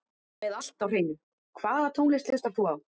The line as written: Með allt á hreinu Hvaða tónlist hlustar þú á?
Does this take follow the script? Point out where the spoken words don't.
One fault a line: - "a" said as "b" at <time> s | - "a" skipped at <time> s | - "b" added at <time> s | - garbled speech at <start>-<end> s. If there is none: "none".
none